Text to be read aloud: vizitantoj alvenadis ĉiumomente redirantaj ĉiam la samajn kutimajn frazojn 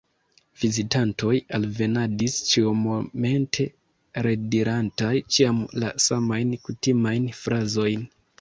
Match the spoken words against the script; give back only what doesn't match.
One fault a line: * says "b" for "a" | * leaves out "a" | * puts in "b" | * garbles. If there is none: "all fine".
all fine